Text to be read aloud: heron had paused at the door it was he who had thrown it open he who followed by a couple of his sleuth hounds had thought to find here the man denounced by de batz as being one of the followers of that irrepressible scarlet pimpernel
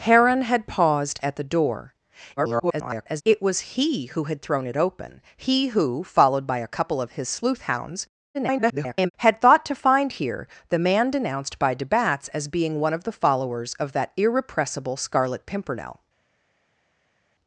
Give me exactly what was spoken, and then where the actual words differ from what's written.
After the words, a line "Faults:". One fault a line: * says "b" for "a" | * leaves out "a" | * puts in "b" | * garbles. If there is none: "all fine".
heron had paused at the door [garbled] it was he who had thrown it open he who followed by a couple of his sleuth hounds [garbled] had thought to find here the man denounced by de batz as being one of the followers of that irrepressible scarlet pimpernel
Faults:
* garbles
* garbles